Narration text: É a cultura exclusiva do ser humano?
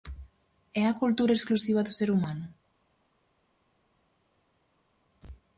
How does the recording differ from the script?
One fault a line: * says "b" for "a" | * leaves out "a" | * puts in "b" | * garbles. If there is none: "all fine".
all fine